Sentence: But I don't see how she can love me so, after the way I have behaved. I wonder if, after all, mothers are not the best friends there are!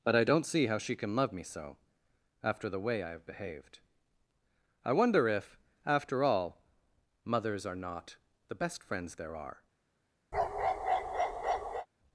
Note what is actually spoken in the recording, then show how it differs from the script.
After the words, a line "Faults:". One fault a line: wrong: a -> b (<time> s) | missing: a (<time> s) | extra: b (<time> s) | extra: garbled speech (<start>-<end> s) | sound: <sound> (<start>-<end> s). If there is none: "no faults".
But I don't see how she can love me so, after the way I have behaved. I wonder if, after all, mothers are not the best friends there are!
Faults:
sound: bark (10.3-11.9 s)